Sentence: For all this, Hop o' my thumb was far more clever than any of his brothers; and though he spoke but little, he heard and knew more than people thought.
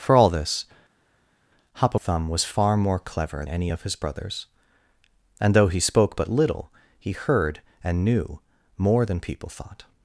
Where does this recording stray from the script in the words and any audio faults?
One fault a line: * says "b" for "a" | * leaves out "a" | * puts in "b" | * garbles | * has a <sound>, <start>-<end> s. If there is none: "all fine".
* leaves out "my"
* leaves out "than"